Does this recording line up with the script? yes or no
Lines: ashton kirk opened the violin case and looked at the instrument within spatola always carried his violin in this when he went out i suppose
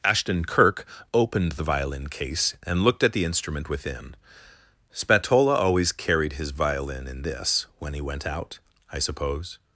yes